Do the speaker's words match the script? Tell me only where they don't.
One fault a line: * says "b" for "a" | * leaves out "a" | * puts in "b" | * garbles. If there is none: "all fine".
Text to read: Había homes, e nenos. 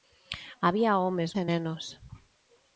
all fine